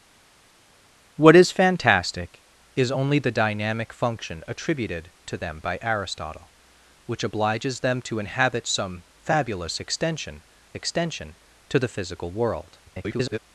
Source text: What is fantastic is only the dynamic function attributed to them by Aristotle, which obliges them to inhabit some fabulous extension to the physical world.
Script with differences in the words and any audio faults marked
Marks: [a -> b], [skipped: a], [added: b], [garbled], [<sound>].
What is fantastic is only the dynamic function attributed to them by Aristotle, which obliges them to inhabit some fabulous extension [added: extension] to the physical world. [garbled]